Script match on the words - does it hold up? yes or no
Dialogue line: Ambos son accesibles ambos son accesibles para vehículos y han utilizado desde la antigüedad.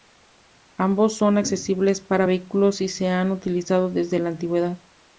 no